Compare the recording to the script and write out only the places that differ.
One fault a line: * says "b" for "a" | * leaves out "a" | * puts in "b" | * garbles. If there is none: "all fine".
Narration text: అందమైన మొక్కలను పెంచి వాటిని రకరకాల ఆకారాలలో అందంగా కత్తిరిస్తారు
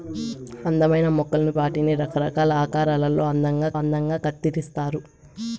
* leaves out "పెంచి"
* puts in "అందంగా"